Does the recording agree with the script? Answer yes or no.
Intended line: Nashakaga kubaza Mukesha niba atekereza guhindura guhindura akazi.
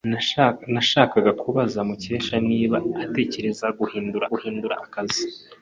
yes